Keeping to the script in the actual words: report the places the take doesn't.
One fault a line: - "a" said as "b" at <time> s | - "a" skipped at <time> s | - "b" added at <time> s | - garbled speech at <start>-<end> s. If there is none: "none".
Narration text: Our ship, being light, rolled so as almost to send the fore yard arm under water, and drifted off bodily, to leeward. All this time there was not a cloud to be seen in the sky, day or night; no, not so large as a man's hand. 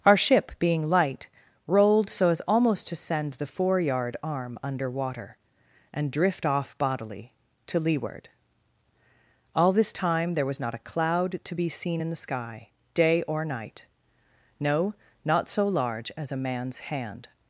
- "drifted" said as "drift" at 6.1 s